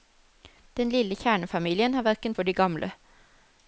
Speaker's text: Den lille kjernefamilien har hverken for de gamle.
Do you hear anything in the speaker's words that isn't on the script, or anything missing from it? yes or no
no